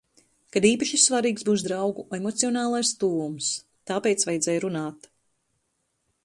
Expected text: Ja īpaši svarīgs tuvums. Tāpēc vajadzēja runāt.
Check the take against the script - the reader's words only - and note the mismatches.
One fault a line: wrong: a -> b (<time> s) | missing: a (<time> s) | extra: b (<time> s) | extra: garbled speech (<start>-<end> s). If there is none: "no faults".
wrong: Ja -> Kad (0.5 s)
extra: būs draugu emocionālais (1.5 s)